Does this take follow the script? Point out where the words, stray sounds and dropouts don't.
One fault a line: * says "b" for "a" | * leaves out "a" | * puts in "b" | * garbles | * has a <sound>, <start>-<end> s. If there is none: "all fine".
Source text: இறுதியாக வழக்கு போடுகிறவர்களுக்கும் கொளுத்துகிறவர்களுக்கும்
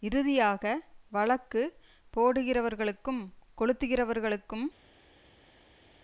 all fine